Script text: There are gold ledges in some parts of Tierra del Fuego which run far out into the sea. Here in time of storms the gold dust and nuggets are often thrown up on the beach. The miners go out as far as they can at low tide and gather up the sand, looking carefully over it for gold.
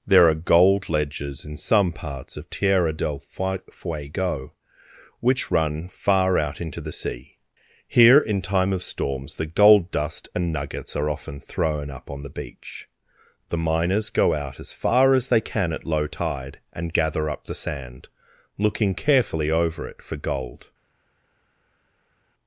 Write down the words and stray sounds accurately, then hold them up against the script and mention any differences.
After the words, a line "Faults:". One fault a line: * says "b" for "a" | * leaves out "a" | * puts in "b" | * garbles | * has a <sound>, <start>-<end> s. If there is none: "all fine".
There are gold ledges in some parts of Tierra del Fuego which run far out into the sea. Here in time of storms the gold dust and nuggets are often thrown up on the beach. The miners go out as far as they can at low tide and gather up the sand, looking carefully over it for gold.
Faults:
all fine